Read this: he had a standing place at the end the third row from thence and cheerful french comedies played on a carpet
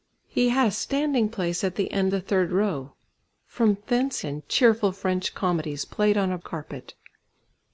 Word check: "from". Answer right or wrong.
right